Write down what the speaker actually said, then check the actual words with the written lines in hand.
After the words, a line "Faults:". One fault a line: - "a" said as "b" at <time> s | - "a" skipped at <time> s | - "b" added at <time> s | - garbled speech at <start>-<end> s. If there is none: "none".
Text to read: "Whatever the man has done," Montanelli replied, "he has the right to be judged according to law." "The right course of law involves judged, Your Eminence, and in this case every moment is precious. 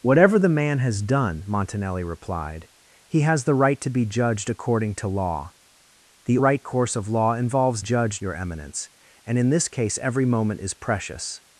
"Whatever the man has done," Montanelli replied, "he has the right to be judged according to law." "The right course of law involves judged, Your Eminence, and in this case every moment is precious.
Faults:
none